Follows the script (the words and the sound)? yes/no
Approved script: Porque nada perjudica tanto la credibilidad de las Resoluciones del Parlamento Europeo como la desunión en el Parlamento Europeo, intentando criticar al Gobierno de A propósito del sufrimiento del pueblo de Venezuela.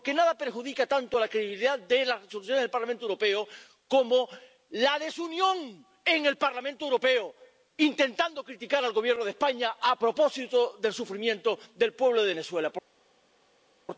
no